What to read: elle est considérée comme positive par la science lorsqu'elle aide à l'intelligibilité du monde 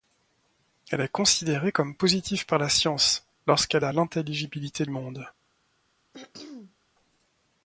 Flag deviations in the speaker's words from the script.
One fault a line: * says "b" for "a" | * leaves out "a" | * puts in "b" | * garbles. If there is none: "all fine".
* leaves out "aide"
* leaves out "du"